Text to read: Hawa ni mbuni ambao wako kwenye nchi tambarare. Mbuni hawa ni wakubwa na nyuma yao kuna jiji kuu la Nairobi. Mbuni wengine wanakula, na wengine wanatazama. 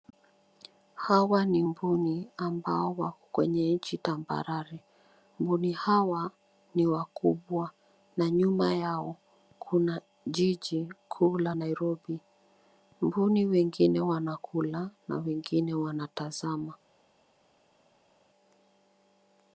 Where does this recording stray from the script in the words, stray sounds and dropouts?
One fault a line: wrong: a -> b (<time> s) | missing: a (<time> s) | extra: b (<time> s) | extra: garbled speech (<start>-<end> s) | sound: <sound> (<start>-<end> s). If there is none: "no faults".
no faults